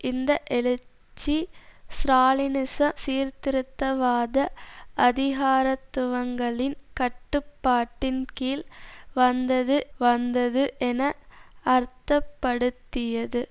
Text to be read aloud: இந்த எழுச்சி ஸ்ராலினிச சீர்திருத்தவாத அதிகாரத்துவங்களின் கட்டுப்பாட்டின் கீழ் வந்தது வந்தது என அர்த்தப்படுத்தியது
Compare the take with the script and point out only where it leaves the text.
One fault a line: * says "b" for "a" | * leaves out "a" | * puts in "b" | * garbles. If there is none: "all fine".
all fine